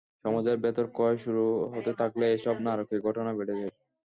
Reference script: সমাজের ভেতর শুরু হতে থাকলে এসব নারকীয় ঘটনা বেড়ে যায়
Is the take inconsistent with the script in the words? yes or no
yes